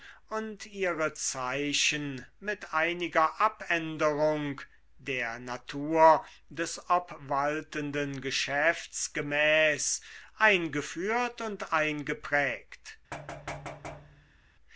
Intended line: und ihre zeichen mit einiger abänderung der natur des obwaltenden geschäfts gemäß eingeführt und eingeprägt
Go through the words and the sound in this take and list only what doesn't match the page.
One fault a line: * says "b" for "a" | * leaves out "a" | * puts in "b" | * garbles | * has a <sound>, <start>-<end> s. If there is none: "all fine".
* has a thud, 13.1-14.5 s